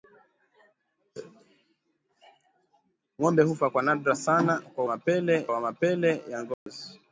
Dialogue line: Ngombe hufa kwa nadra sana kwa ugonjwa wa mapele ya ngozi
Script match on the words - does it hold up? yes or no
no